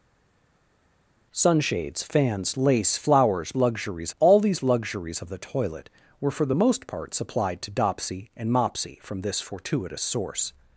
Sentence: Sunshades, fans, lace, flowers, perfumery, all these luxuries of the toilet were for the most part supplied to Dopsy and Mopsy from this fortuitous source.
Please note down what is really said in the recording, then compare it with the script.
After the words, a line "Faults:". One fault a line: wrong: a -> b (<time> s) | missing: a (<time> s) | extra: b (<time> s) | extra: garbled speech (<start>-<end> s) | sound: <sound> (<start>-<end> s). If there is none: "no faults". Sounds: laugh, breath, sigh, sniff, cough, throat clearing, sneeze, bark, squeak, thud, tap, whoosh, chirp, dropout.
Sunshades, fans, lace, flowers, luxuries, all these luxuries of the toilet were for the most part supplied to Dopsy and Mopsy from this fortuitous source.
Faults:
wrong: perfumery -> luxuries (3.6 s)